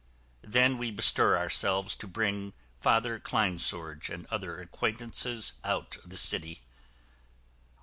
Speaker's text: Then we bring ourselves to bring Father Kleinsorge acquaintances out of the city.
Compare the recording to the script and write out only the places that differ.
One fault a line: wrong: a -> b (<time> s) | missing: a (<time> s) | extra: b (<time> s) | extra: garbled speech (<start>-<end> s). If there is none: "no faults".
wrong: bring -> bestir (0.9 s)
extra: and other (4.1 s)